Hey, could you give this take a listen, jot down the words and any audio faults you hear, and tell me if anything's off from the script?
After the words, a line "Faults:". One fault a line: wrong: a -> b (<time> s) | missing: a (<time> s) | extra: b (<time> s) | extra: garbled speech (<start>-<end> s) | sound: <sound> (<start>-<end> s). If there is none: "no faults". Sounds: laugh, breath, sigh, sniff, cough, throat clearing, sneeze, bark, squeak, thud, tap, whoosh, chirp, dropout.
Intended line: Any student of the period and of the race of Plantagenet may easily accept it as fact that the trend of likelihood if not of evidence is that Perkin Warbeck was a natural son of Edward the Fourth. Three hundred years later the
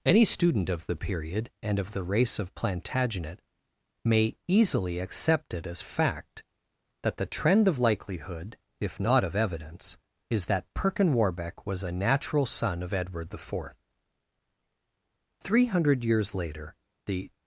Any student of the period and of the race of Plantagenet may easily accept it as fact that the trend of likelihood if not of evidence is that Perkin Warbeck was a natural son of Edward the Fourth. Three hundred years later the
Faults:
no faults